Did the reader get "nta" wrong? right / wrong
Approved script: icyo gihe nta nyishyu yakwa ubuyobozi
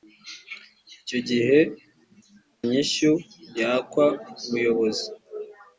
wrong